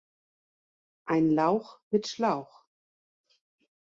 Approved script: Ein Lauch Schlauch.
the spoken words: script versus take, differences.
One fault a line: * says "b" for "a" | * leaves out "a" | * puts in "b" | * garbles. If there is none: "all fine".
* puts in "mit"